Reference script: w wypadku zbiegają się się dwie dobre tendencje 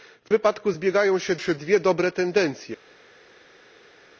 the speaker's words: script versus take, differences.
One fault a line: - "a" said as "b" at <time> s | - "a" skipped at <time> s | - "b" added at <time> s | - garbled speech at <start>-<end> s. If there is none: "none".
none